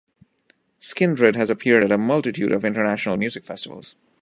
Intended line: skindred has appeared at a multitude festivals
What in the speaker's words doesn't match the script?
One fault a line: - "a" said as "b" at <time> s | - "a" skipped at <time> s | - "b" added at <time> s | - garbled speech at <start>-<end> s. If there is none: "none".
- "of international music" added at 2.5 s